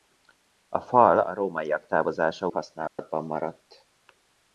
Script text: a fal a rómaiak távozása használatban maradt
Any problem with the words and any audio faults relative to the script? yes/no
yes